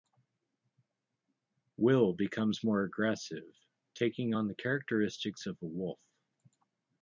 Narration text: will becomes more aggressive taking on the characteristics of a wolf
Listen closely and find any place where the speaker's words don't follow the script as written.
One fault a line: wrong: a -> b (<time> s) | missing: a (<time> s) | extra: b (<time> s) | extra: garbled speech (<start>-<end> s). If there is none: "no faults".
no faults